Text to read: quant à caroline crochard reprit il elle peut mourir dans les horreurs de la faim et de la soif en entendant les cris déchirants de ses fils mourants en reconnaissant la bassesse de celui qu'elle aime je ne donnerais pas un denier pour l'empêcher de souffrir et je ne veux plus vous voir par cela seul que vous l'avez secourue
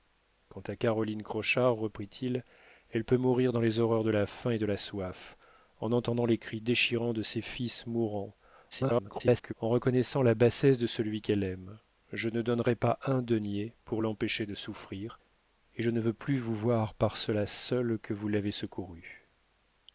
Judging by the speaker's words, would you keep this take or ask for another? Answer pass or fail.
fail